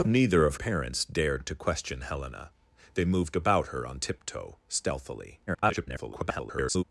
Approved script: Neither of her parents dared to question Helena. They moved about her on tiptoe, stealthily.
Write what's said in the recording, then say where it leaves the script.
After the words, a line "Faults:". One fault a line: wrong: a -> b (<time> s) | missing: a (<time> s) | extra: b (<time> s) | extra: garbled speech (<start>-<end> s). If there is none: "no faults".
Neither of parents dared to question Helena. They moved about her on tiptoe, stealthily. [garbled]
Faults:
missing: her (0.6 s)
extra: garbled speech (5.5-6.8 s)